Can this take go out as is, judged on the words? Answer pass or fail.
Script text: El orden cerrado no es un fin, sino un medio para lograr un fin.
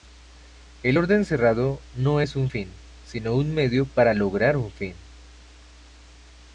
pass